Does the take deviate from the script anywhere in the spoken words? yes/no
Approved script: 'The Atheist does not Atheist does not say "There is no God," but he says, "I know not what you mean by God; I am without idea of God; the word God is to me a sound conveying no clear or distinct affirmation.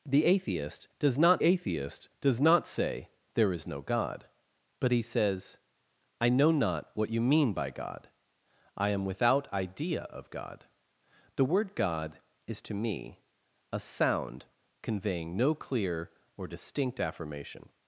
no